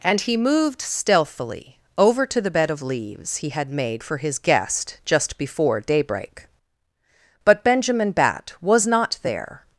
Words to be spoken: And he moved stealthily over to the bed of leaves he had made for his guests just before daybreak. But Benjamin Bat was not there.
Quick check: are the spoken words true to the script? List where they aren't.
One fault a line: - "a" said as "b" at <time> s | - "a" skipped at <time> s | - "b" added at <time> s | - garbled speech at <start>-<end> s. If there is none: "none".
- "guests" said as "guest" at 4.4 s